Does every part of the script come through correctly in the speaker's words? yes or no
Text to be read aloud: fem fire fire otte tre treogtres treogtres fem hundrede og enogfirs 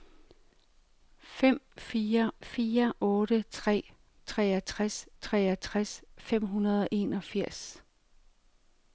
yes